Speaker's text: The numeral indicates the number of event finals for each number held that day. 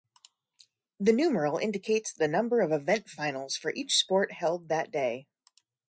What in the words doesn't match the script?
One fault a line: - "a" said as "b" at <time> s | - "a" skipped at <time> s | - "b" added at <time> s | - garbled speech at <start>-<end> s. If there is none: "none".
- "number" said as "sport" at 4.0 s